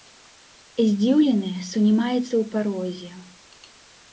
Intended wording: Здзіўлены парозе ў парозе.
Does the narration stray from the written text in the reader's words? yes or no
yes